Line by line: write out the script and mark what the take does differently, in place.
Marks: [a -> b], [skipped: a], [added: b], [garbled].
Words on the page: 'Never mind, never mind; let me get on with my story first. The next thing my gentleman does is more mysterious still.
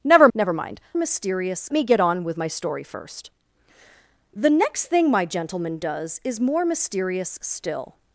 'Never [skipped: mind,] never mind; [let -> mysterious] me get on with my story first. The next thing my gentleman does is more mysterious still.